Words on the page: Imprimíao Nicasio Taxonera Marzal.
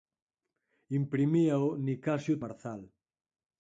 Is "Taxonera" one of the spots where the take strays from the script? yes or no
yes